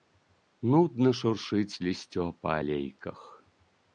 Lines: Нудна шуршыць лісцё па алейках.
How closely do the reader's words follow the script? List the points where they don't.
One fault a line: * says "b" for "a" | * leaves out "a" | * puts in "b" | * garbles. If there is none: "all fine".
all fine